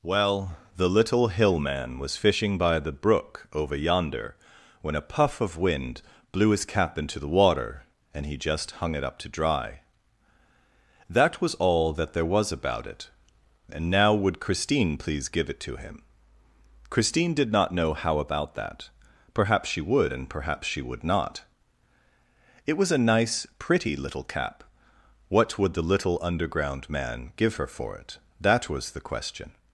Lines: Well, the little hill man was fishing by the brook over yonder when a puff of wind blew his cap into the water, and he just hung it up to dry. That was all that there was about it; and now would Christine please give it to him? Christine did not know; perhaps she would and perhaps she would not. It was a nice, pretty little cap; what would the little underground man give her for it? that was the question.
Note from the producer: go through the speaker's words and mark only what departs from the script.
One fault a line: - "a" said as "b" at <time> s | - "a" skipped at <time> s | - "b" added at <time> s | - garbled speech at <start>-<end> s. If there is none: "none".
- "how about that" added at 17.9 s